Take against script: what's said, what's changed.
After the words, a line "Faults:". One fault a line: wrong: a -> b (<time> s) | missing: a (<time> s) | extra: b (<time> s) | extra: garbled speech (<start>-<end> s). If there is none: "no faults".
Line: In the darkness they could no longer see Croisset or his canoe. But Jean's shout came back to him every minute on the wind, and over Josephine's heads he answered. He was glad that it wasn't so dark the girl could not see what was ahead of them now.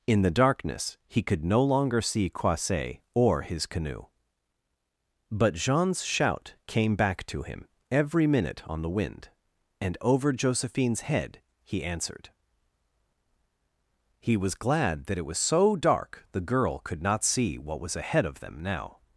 In the darkness he could no longer see Croisset or his canoe. But Jean's shout came back to him every minute on the wind, and over Josephine's head he answered. He was glad that it was so dark the girl could not see what was ahead of them now.
Faults:
wrong: they -> he (1.1 s)
wrong: heads -> head (11.0 s)
wrong: wasn't -> was (15.3 s)